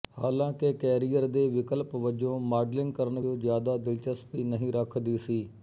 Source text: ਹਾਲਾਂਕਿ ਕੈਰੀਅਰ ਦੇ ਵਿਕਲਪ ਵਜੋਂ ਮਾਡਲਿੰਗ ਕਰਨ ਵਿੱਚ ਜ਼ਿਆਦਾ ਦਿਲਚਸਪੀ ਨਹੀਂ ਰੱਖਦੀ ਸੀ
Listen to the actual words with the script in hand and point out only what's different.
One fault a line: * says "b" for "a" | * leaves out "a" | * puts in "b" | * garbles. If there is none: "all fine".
* leaves out "ਵਿੱਚ"